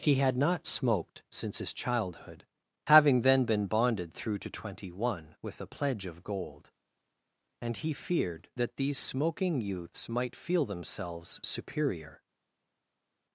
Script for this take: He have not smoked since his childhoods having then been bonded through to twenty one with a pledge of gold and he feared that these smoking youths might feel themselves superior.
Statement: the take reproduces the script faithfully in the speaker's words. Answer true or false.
false